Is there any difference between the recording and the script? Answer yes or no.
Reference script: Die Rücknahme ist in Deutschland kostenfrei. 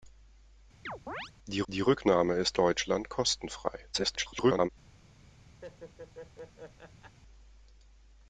yes